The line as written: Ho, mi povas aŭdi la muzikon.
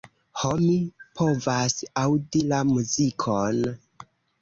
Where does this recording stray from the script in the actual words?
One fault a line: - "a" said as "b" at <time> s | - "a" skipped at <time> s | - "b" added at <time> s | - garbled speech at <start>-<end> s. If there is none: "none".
none